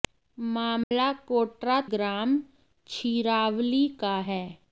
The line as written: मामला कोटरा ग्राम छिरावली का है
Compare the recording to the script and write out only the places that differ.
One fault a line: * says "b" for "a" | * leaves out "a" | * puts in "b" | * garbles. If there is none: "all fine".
all fine